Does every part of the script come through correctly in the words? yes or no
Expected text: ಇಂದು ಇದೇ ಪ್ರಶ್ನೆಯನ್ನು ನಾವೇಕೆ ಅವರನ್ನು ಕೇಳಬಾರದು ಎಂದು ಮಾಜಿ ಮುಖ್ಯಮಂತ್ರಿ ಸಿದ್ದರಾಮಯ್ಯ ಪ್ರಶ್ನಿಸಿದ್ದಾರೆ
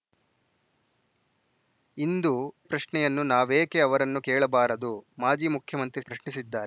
no